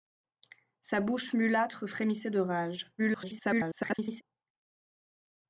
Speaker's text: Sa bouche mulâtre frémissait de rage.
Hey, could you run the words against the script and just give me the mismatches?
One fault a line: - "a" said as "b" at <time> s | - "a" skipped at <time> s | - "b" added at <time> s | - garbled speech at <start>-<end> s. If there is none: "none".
- garbled speech at 3.0-4.2 s